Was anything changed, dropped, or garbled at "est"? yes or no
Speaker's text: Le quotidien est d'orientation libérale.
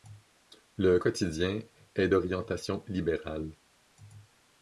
no